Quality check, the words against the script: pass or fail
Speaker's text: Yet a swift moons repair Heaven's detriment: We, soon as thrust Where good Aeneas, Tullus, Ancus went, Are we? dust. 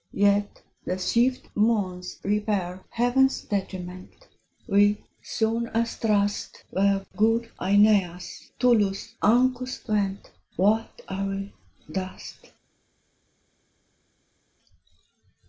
fail